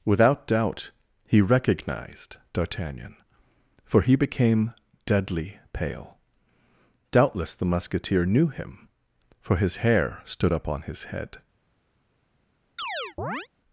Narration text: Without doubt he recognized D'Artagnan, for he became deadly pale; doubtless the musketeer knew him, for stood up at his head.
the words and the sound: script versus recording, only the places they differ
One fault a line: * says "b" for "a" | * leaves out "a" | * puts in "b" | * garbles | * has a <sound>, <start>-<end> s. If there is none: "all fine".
* puts in "his hair"
* says "on" for "at"
* has a chirp, 12.8-13.5 s